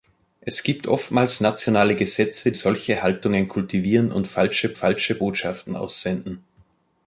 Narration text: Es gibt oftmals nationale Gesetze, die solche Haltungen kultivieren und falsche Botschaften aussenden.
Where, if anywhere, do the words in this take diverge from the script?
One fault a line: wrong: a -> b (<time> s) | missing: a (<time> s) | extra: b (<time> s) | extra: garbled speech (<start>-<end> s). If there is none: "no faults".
missing: die (2.5 s)
extra: falsche (4.7 s)